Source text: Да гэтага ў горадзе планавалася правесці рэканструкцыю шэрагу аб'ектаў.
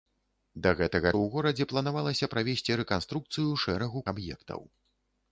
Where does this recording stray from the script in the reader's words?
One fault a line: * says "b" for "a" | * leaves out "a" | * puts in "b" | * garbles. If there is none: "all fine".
all fine